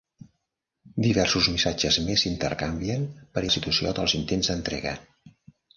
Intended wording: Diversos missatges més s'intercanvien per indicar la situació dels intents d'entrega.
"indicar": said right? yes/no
no